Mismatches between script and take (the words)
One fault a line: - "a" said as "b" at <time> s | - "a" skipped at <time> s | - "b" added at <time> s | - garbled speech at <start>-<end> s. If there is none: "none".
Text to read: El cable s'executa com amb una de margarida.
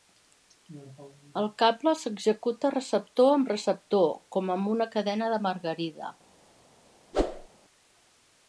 - "receptor amb receptor" added at 2.8 s
- "cadena" added at 5.0 s